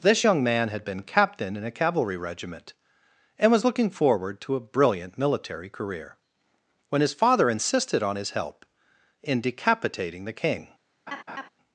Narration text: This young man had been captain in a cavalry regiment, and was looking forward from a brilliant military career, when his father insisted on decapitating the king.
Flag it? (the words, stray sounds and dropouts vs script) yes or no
yes